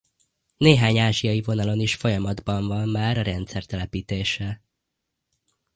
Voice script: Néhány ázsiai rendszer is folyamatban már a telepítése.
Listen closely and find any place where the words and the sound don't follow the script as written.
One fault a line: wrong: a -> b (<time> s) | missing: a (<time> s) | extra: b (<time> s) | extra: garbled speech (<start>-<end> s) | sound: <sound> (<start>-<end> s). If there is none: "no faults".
wrong: rendszer -> vonalon (1.4 s)
extra: van (2.7 s)
extra: rendszer (3.2 s)